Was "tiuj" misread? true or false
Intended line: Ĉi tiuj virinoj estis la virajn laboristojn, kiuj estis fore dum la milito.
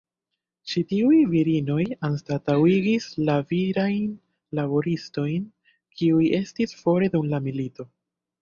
false